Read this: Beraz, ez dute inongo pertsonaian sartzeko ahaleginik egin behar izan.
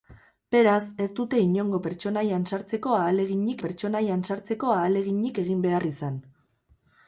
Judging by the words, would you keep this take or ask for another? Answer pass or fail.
fail